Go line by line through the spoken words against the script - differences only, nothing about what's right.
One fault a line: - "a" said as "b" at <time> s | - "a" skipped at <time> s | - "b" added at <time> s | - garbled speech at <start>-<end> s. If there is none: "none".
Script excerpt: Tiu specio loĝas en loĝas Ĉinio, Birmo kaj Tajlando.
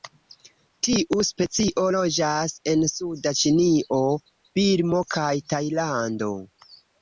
- "loĝas" said as "suda" at 2.9 s